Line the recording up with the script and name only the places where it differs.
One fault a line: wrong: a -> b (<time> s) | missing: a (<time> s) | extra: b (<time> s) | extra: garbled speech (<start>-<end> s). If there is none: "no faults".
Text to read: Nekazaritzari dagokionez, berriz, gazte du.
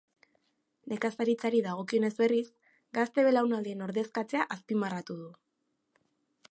extra: belaunaldien ordezkatzea azpimarratu (3.3 s)